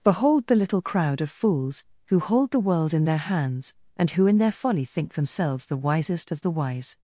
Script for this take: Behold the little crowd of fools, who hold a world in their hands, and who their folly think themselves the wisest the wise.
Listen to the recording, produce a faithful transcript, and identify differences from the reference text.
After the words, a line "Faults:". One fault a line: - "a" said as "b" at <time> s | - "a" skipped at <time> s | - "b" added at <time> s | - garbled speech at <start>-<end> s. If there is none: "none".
Behold the little crowd of fools, who hold the world in their hands, and who in their folly think themselves the wisest of the wise.
Faults:
- "a" said as "the" at 2.5 s
- "in" added at 4.2 s
- "of" added at 6.3 s